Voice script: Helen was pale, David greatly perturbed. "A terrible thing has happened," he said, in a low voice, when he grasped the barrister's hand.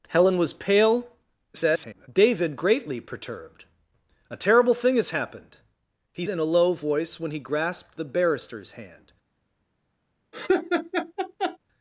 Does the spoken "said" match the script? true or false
false